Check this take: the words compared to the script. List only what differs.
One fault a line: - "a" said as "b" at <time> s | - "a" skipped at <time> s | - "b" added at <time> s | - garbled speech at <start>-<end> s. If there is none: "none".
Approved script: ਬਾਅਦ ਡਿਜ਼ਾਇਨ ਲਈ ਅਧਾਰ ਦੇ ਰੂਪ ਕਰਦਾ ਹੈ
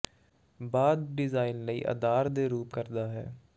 none